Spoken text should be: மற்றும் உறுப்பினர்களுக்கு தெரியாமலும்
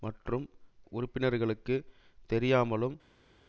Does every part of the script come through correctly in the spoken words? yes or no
yes